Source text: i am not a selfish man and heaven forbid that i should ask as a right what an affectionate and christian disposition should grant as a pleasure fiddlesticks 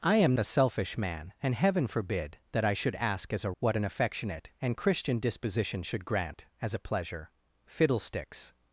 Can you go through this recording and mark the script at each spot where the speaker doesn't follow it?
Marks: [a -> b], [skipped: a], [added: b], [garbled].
i am [skipped: not] a selfish man and heaven forbid that i should ask as a [skipped: right] what an affectionate and christian disposition should grant as a pleasure fiddlesticks